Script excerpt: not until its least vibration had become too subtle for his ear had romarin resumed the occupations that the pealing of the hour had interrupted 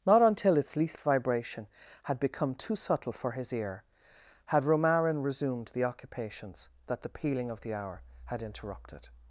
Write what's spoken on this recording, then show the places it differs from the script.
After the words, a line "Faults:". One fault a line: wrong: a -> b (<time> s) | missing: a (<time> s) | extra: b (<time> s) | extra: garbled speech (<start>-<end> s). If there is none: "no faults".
not until its least vibration had become too subtle for his ear had romarin resumed the occupations that the pealing of the hour had interrupted
Faults:
no faults